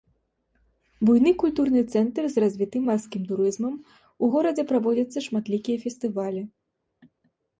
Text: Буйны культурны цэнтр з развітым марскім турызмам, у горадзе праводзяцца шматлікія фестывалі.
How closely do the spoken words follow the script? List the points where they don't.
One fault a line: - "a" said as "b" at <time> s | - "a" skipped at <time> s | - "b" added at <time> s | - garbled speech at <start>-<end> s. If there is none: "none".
none